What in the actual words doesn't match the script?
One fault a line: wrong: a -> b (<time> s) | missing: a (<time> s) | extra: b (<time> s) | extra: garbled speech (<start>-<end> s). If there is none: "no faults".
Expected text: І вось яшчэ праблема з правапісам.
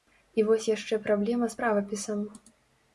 no faults